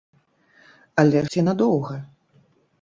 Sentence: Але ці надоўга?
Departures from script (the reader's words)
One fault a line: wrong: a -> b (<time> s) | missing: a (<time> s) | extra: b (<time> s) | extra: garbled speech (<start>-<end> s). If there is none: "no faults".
no faults